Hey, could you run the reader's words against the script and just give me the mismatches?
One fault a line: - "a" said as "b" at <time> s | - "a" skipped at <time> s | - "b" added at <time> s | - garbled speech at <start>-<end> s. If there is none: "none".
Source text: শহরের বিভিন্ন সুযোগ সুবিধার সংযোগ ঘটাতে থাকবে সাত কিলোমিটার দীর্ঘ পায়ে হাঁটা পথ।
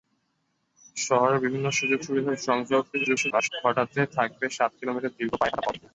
- garbled speech at 2.9-3.5 s